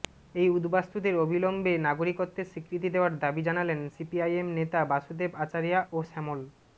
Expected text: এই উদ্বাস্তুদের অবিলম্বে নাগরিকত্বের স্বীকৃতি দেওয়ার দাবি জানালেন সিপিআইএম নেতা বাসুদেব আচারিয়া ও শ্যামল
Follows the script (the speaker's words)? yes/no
yes